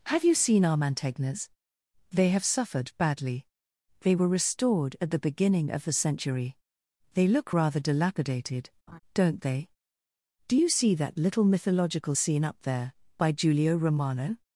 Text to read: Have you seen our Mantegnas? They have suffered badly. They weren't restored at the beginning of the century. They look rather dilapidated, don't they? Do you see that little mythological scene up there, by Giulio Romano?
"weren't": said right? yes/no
no